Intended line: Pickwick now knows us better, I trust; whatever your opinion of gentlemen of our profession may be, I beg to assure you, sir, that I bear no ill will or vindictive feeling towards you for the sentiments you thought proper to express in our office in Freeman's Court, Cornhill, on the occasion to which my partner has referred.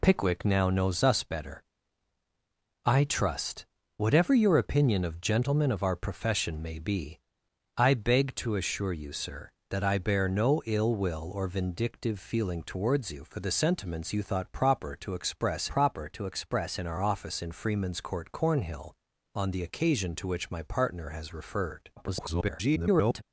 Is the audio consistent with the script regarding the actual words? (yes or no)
no